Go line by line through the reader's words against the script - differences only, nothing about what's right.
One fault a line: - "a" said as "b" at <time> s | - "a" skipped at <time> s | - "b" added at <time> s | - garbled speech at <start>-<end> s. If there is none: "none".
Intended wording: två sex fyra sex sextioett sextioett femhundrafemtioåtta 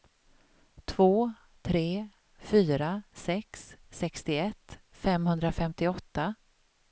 - "sex" said as "tre" at 1.6 s
- "sextioett" skipped at 4.8 s